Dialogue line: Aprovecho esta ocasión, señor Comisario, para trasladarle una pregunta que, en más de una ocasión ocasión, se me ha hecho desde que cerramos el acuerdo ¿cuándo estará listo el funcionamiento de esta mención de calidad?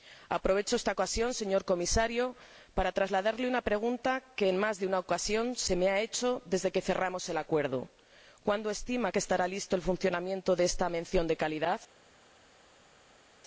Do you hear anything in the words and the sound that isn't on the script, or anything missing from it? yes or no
yes